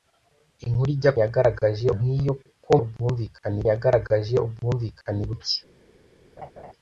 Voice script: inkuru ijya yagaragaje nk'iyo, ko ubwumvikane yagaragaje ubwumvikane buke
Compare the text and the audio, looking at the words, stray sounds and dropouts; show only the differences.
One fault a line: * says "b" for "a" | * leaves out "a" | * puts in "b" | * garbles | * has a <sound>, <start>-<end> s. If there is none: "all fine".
* has a laugh, 6.4-6.7 s